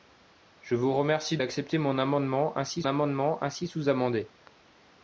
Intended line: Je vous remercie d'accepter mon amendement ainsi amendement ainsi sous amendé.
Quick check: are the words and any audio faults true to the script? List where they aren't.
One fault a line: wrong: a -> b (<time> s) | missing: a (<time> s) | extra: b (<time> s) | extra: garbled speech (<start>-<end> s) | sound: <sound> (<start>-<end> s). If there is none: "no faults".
no faults